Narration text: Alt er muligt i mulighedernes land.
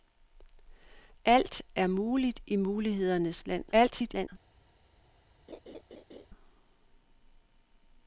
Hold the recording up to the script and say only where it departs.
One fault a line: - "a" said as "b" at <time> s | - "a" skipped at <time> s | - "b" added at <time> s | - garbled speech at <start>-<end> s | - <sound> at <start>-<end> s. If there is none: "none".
- garbled speech at 3.7-4.3 s
- laugh at 5.5-6.3 s